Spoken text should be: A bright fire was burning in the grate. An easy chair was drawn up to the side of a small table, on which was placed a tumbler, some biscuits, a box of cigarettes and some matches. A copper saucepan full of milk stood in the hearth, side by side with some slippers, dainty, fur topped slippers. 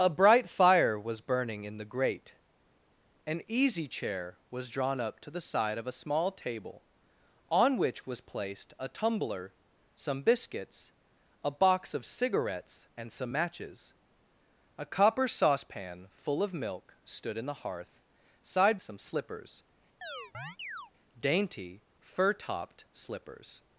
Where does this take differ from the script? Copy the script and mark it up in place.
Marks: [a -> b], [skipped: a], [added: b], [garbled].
A bright fire was burning in the grate. An easy chair was drawn up to the side of a small table, on which was placed a tumbler, some biscuits, a box of cigarettes and some matches. A copper saucepan full of milk stood in the hearth, side [skipped: by side with] some slippers, dainty, fur topped slippers.